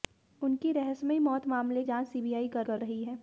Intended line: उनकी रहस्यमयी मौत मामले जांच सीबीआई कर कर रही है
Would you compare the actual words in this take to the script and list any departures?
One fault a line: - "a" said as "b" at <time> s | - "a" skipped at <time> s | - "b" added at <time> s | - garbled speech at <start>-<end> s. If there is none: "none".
none